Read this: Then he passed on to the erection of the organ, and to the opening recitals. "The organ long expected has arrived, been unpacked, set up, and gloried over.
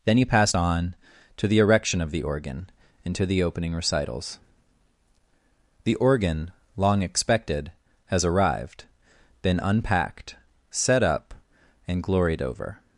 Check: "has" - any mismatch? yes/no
no